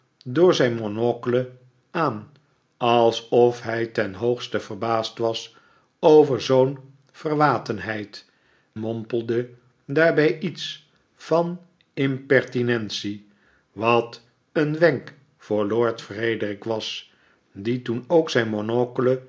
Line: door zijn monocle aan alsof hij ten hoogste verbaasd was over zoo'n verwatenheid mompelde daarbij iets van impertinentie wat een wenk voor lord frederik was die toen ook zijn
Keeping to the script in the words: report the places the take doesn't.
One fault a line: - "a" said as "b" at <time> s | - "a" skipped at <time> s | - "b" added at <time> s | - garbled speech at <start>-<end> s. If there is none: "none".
none